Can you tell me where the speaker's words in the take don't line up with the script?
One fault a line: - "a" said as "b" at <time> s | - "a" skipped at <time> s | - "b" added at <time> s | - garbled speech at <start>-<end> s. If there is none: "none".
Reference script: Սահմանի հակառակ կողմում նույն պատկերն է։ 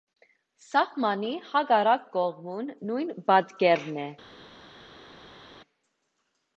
none